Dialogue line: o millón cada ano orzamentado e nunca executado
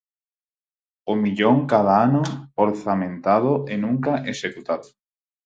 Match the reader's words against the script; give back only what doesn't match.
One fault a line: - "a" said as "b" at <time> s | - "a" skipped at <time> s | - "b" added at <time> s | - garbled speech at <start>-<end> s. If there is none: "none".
none